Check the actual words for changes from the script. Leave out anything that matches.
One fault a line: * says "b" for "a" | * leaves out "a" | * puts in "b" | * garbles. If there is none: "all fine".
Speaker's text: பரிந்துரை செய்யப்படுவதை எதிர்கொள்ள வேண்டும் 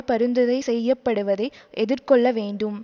all fine